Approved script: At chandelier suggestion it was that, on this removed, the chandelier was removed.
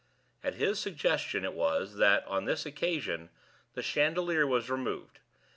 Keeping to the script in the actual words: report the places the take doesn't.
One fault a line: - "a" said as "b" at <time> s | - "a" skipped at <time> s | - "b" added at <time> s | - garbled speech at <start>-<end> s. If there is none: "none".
- "chandelier" said as "his" at 0.6 s
- "removed" said as "occasion" at 2.7 s